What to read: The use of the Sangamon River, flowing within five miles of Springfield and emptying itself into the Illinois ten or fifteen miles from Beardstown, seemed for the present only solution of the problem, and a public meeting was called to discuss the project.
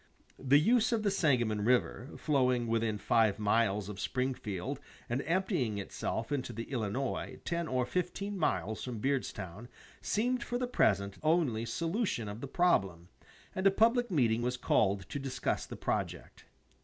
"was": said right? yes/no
yes